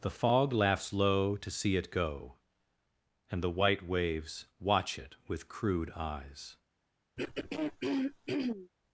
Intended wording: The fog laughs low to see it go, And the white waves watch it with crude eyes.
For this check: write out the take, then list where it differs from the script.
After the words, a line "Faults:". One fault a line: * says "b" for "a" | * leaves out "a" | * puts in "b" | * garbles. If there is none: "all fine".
The fog laughs low to see it go, And the white waves watch it with crude eyes.
Faults:
all fine